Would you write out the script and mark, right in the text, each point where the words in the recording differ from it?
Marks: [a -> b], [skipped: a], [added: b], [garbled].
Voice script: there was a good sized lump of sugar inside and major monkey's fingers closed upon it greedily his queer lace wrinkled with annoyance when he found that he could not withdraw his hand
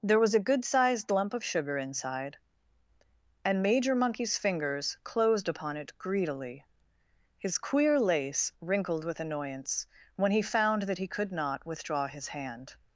there was a good sized lump of sugar inside and major monkey's fingers closed upon it greedily his queer lace wrinkled with annoyance when he found that he could not withdraw his hand